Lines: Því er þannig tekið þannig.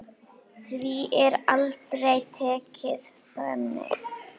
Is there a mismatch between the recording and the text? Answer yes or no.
yes